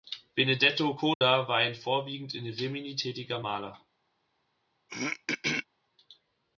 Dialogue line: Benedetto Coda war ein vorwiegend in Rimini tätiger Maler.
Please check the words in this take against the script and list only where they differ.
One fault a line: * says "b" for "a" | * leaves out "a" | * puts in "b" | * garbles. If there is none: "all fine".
all fine